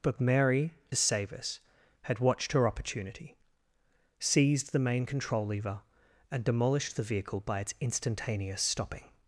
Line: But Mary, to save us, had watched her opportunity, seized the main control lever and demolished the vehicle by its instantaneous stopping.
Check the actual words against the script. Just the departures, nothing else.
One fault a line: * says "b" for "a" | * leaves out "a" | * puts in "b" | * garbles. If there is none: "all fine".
* leaves out "to"